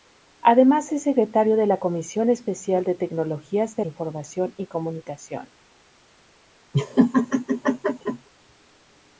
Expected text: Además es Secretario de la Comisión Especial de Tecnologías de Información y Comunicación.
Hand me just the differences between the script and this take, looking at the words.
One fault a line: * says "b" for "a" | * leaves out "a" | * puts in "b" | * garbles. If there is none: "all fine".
all fine